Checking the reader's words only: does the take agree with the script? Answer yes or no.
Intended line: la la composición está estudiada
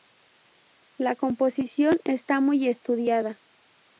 no